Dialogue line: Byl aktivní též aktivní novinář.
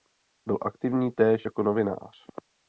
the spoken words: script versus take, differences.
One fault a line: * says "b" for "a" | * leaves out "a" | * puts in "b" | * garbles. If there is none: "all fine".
* says "jako" for "aktivní"